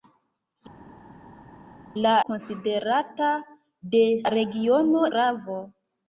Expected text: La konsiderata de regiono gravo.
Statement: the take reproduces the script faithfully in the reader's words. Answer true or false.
true